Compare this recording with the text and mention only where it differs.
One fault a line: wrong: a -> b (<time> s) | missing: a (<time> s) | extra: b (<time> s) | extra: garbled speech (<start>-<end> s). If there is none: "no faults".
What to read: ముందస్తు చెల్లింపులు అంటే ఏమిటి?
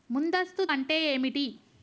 missing: చెల్లింపులు (0.6 s)